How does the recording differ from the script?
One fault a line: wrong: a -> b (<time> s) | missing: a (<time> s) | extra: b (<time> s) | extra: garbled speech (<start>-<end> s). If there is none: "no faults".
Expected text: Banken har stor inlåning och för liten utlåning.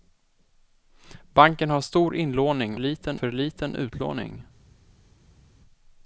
wrong: och -> liten (2.8 s)